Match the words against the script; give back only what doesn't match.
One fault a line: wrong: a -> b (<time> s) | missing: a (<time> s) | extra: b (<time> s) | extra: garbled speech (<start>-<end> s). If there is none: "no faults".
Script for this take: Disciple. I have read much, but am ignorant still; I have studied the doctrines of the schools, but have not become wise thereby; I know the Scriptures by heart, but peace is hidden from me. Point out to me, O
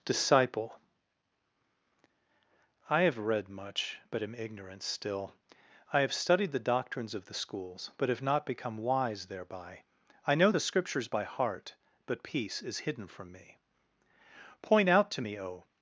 no faults